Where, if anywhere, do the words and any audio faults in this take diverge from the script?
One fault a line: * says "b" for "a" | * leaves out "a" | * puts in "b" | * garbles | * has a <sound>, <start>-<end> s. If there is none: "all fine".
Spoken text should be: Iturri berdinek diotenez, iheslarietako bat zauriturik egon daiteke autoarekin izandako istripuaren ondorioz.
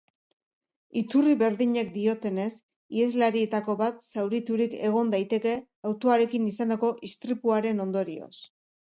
all fine